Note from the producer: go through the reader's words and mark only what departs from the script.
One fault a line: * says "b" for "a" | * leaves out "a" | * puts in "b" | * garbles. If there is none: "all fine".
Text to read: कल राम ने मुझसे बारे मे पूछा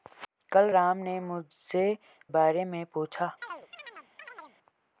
all fine